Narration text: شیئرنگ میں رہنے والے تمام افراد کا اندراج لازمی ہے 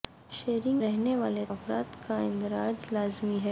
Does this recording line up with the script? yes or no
no